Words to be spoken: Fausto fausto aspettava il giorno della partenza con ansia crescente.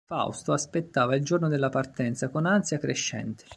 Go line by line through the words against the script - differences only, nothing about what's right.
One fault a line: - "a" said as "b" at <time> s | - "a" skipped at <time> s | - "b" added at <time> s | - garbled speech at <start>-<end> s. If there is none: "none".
- "fausto" skipped at 0.5 s